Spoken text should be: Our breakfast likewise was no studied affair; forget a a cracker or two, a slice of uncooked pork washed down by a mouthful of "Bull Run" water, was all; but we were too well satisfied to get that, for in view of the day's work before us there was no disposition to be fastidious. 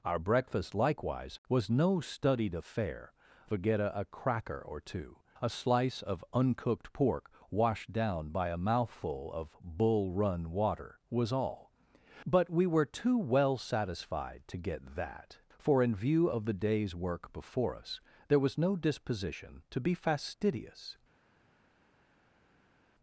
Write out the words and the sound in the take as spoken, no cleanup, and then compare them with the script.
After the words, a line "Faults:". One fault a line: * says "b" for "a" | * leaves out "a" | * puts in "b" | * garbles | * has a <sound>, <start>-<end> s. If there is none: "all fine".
Our breakfast likewise was no studied affair; forget a a cracker or two, a slice of uncooked pork washed down by a mouthful of "Bull Run" water, was all; but we were too well satisfied to get that, for in view of the day's work before us there was no disposition to be fastidious.
Faults:
all fine